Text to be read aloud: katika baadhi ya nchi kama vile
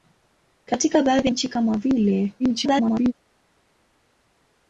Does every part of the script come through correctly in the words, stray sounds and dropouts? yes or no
no